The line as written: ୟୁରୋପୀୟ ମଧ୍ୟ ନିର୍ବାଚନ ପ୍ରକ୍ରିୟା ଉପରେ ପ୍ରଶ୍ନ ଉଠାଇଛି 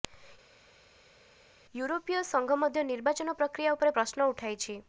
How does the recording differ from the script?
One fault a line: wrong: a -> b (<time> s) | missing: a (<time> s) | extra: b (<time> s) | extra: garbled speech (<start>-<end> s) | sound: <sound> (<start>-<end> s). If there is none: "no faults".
extra: ସଂଘ (2.3 s)